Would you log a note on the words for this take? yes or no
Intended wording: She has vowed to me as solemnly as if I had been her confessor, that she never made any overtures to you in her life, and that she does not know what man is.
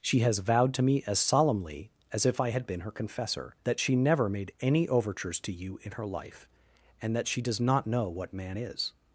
no